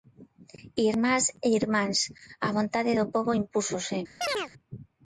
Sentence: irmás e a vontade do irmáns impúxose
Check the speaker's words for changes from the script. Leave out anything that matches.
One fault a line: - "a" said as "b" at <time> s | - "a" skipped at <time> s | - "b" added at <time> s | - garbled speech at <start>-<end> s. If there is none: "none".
- "irmáns" added at 1.6 s
- "irmáns" said as "pobo" at 3.1 s